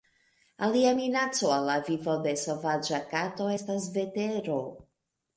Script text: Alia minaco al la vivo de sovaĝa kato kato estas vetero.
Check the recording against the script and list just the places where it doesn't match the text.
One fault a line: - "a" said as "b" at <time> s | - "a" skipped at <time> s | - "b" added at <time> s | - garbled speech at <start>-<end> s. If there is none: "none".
- "kato" skipped at 3.5 s